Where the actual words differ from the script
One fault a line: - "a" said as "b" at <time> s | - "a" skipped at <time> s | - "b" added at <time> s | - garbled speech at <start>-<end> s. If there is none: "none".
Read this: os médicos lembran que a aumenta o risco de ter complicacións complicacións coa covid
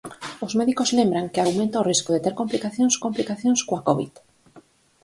none